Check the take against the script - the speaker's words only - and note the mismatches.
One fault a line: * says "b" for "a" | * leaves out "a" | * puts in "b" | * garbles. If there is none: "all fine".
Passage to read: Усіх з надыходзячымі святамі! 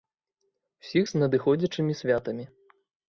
all fine